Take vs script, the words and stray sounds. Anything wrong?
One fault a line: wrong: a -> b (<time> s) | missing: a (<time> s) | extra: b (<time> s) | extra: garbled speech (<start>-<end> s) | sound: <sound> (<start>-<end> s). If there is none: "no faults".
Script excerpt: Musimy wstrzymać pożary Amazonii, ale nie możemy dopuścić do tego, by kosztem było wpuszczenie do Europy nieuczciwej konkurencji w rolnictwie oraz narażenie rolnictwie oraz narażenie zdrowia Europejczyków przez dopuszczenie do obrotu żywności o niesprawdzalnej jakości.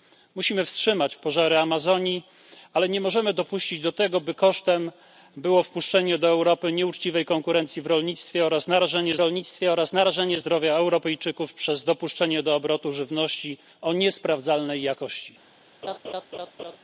sound: laugh (15.8-16.8 s)